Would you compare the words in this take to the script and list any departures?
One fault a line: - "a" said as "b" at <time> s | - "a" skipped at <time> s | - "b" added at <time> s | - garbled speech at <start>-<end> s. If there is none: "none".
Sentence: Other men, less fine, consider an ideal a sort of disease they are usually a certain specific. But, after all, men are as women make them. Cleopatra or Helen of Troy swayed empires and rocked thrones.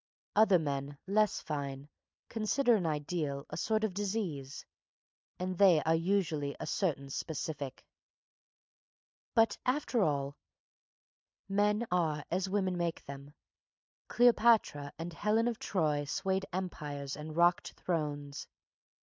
- "and" added at 5.4 s
- "or" said as "and" at 15.0 s